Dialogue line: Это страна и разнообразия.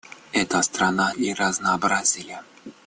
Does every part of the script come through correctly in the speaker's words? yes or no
yes